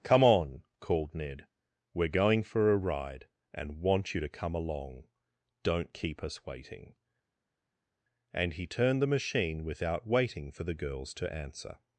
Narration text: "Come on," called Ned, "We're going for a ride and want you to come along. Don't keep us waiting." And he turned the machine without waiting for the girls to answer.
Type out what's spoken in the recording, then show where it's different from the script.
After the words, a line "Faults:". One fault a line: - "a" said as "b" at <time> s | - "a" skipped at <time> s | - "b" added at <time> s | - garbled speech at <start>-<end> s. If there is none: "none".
"Come on," called Ned, "We're going for a ride and want you to come along. Don't keep us waiting." And he turned the machine without waiting for the girls to answer.
Faults:
none